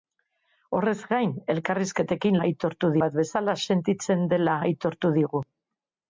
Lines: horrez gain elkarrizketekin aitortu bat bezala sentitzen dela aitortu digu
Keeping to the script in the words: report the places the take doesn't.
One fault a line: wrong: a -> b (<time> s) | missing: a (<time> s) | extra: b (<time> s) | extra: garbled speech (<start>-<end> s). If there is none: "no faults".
no faults